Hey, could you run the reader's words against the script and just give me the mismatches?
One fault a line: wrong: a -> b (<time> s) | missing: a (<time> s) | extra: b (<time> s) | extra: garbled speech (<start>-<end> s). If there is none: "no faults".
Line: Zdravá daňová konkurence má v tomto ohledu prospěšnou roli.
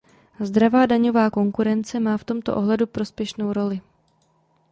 no faults